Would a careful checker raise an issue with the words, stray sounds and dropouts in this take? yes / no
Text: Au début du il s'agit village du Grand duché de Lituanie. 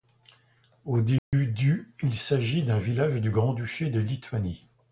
yes